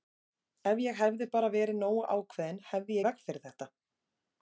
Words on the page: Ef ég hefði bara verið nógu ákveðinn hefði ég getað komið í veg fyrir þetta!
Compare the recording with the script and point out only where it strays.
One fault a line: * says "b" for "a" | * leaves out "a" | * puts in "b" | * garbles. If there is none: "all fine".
* leaves out "ég getað komið"